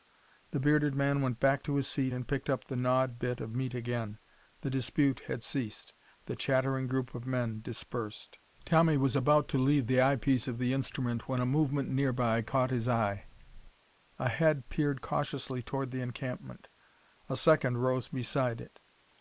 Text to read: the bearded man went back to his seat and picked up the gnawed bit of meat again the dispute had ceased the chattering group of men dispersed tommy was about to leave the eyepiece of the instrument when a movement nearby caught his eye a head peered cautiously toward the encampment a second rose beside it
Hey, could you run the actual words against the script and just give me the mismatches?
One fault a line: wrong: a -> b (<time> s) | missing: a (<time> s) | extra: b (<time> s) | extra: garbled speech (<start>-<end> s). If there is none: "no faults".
no faults